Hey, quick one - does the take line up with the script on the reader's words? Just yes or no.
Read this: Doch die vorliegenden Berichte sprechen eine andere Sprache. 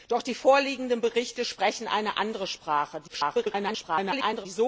no